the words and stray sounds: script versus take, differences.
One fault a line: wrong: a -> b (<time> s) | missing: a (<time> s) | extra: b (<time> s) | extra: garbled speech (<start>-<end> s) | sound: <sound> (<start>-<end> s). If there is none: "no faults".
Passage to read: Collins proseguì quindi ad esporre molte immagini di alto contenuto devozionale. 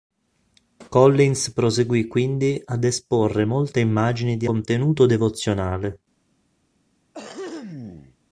missing: alto (4.5 s)
sound: throat clearing (7.1-8.2 s)